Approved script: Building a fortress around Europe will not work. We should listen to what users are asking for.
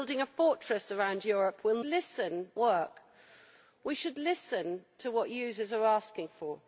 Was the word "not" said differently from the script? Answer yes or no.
yes